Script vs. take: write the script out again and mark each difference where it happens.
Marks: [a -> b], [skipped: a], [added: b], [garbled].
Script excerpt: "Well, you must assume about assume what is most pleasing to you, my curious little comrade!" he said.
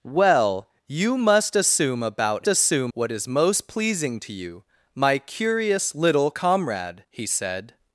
"Well, you must assume about assume what is most pleasing to you, my curious little comrade!" he said.